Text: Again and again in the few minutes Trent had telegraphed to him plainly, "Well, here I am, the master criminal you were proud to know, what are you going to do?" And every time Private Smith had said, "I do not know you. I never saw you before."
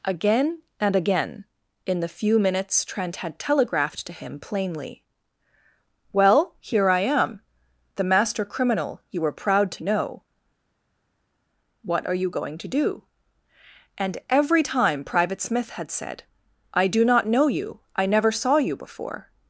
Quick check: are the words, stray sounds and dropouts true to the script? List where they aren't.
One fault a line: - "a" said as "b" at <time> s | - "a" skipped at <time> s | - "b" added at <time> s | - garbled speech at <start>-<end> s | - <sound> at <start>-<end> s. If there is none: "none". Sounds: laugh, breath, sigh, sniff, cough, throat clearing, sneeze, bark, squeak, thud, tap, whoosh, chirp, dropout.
none